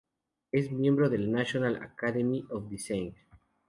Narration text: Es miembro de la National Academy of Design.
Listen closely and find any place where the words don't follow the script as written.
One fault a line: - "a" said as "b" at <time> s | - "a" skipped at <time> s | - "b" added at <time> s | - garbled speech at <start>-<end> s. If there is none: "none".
none